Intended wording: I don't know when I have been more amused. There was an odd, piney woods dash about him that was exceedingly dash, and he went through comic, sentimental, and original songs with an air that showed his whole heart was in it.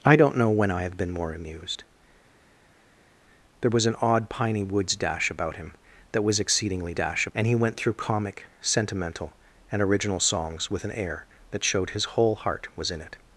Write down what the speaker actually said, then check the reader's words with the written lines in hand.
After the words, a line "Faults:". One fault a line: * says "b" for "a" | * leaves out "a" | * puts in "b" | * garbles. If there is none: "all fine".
I don't know when I have been more amused. There was an odd, piney woods dash about him that was exceedingly dash, and he went through comic, sentimental, and original songs with an air that showed his whole heart was in it.
Faults:
all fine